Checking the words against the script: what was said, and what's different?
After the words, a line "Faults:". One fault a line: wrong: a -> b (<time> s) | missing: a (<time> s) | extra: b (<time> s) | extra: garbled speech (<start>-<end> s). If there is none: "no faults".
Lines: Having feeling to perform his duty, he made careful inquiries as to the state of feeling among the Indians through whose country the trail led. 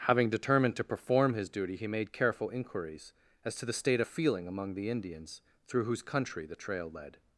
Having determined to perform his duty, he made careful inquiries as to the state of feeling among the Indians through whose country the trail led.
Faults:
wrong: feeling -> determined (0.3 s)